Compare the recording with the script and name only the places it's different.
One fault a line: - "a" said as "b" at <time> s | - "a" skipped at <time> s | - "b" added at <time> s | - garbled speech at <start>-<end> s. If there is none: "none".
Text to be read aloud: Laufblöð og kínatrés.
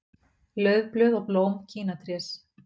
- "blóm" added at 1.3 s